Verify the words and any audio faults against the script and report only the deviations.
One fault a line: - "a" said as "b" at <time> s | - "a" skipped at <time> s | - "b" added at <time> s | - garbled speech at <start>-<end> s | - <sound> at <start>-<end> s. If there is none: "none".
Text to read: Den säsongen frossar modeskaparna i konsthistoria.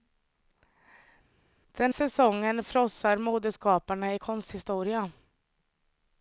none